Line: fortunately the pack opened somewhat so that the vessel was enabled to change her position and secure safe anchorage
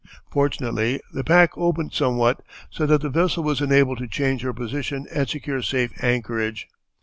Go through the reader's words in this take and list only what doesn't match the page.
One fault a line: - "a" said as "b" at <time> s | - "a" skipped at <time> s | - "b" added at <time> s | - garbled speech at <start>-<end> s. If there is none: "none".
none